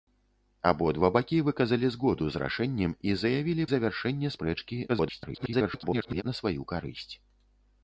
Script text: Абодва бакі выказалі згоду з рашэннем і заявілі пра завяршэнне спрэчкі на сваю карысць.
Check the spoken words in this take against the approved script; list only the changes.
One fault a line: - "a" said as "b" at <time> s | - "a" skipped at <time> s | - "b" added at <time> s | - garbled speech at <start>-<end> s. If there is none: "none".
- "пра" skipped at 3.7 s
- garbled speech at 4.9-6.2 s